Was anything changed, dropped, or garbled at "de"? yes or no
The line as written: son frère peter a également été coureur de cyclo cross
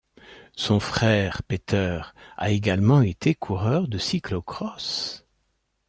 no